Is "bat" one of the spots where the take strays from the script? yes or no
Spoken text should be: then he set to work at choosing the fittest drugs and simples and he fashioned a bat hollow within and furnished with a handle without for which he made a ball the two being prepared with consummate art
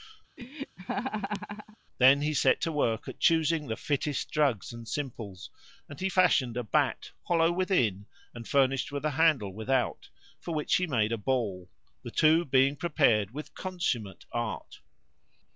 no